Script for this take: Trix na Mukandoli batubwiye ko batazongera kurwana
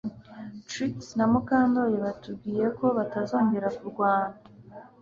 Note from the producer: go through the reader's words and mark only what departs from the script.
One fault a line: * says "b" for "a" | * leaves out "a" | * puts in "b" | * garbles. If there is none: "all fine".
all fine